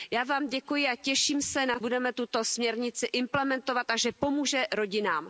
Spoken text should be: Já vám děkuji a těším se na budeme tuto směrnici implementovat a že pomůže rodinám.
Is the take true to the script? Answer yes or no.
yes